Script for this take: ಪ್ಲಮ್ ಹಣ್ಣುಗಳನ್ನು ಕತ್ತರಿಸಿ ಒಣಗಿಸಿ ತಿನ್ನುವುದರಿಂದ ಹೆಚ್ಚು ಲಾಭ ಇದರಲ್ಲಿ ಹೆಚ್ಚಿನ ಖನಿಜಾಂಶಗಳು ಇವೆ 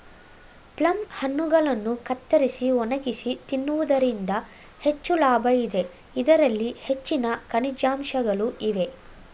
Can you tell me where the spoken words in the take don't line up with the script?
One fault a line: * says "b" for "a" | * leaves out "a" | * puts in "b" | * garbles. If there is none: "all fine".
* puts in "ಇದೆ"